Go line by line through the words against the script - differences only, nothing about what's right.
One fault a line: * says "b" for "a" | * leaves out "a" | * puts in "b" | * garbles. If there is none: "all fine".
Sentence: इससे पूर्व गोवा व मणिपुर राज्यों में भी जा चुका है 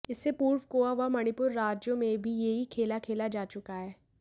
* puts in "यही खेल खेला"